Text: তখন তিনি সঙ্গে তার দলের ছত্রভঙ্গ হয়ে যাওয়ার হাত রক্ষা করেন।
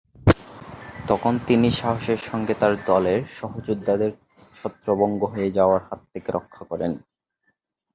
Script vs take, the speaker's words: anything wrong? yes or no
yes